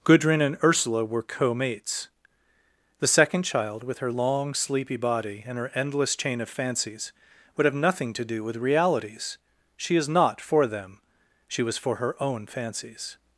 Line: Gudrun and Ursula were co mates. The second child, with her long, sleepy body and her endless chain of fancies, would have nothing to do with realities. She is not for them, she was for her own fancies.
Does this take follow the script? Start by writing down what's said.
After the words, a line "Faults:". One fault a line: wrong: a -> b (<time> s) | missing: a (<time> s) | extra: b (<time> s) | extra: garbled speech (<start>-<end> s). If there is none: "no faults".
Gudrun and Ursula were co mates. The second child, with her long, sleepy body and her endless chain of fancies, would have nothing to do with realities. She is not for them, she was for her own fancies.
Faults:
no faults